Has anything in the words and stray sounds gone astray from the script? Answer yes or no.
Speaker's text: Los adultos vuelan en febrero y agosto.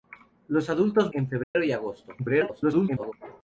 yes